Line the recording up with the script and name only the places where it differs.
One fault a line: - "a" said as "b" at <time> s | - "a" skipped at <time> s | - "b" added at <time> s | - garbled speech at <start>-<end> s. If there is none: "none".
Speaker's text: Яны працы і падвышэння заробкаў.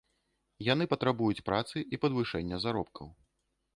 - "патрабуюць" added at 0.9 s